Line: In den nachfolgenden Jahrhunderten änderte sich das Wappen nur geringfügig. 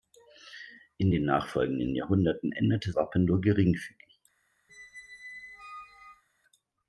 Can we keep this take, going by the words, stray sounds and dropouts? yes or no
no